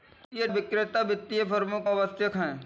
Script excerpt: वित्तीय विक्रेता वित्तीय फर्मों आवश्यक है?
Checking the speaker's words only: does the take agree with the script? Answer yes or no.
yes